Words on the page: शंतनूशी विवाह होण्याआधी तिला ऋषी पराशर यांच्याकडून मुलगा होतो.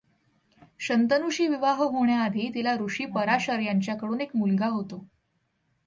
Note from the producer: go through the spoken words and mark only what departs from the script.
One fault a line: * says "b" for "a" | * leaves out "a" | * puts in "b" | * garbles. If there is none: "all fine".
* puts in "एक"